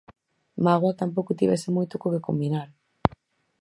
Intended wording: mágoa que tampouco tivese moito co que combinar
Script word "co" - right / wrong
right